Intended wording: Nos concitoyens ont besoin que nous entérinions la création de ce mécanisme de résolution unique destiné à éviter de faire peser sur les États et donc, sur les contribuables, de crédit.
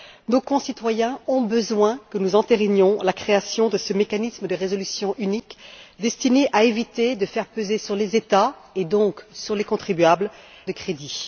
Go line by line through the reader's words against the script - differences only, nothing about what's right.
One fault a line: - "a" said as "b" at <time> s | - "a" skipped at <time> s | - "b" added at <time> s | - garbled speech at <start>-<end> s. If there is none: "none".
none